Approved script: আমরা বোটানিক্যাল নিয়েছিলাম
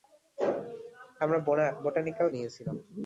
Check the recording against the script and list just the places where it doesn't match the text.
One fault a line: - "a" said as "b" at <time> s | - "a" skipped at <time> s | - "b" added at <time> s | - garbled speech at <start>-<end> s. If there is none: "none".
none